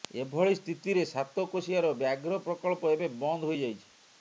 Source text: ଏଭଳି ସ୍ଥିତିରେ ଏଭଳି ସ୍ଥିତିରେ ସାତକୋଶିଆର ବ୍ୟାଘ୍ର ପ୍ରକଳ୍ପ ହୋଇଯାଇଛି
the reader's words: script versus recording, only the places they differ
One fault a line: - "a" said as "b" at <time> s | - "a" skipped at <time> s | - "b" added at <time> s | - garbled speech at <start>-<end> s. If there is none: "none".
- "ଏଭଳି ସ୍ଥିତିରେ" skipped at 1.0 s
- "ଏବେ ବନ୍ଦ" added at 3.0 s